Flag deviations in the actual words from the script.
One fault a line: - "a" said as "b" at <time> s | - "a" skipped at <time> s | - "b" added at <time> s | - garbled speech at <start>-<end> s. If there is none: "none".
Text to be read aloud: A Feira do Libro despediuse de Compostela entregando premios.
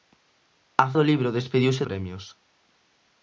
- "Feira" skipped at 0.9 s
- "de Compostela entregando" skipped at 1.8 s